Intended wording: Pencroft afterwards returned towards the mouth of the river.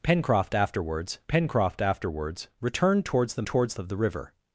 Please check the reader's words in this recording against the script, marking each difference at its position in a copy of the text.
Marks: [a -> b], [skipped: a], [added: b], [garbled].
Pencroft afterwards [added: pencroft afterwards] returned towards the [mouth -> towards] of the river.